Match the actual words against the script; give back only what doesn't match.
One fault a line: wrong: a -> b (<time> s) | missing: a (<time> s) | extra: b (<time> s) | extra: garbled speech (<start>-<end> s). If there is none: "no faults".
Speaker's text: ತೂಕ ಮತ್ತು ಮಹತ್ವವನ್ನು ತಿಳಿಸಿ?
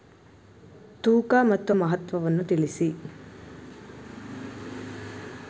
no faults